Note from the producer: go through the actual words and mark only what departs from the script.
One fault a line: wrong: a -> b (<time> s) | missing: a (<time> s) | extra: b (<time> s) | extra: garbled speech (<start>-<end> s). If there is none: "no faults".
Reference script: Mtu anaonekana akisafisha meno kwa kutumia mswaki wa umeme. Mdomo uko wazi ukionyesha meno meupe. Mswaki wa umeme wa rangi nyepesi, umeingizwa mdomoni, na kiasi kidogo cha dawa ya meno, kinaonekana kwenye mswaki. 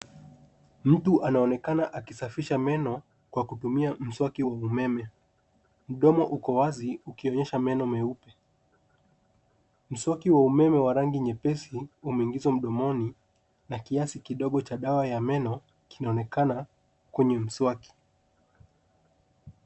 no faults